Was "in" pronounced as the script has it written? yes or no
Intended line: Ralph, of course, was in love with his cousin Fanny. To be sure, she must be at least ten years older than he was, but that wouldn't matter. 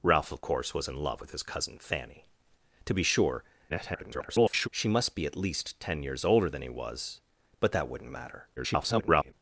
yes